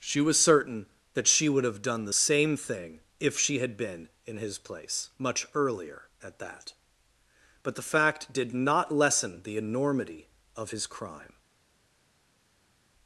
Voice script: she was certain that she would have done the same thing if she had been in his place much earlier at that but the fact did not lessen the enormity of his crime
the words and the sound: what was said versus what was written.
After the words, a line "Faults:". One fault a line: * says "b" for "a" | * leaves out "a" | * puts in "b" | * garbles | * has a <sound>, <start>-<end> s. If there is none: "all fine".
she was certain that she would have done the same thing if she had been in his place much earlier at that but the fact did not lessen the enormity of his crime
Faults:
all fine